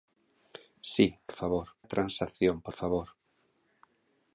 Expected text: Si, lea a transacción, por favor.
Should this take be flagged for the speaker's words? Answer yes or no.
yes